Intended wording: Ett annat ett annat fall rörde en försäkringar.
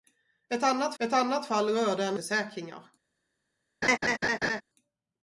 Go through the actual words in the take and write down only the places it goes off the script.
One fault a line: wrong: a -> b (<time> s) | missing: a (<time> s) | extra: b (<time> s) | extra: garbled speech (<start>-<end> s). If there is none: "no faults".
no faults